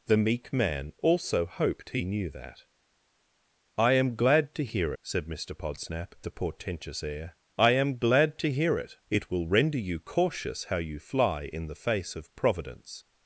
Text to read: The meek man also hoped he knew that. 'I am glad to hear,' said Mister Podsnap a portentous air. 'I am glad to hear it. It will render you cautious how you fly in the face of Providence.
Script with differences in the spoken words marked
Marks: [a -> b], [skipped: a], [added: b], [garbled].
The meek man also hoped he knew that. 'I am glad to hear,' said Mister Podsnap a portentous air. 'I am glad to hear it. It will render you cautious how you fly in the face of Providence.